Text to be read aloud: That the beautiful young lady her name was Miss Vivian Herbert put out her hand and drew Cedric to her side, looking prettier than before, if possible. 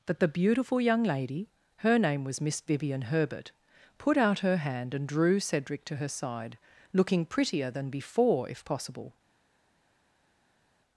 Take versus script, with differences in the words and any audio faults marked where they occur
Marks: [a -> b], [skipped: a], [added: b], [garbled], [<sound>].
That the beautiful young lady her name was Miss Vivian Herbert put out her hand and drew Cedric to her side, looking prettier than before, if possible.